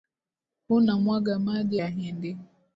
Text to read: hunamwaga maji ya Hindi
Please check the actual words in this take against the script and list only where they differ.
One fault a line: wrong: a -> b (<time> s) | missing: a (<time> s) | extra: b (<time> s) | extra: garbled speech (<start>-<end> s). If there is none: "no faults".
no faults